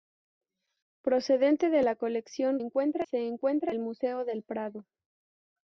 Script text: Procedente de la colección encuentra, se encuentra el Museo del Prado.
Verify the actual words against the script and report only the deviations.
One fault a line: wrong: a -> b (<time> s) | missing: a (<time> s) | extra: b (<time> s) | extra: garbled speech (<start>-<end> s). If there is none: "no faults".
no faults